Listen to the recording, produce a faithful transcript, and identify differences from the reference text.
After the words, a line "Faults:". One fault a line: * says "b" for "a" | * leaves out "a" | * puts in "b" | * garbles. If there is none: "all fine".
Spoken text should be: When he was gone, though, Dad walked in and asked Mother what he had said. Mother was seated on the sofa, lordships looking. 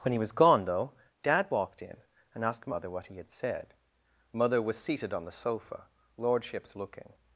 When he was gone, though, Dad walked in and asked Mother what he had said. Mother was seated on the sofa, lordships looking.
Faults:
all fine